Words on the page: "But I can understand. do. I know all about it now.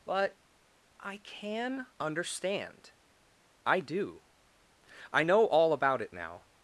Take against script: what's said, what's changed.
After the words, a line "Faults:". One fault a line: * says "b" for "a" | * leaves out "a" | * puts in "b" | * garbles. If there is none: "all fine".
"But I can understand. I do. I know all about it now.
Faults:
* puts in "I"